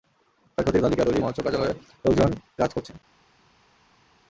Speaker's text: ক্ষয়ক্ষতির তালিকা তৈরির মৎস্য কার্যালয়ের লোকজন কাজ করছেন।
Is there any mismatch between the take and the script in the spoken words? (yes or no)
no